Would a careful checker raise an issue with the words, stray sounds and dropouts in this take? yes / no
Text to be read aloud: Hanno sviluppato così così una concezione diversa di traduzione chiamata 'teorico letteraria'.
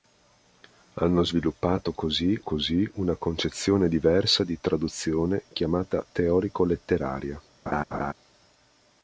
yes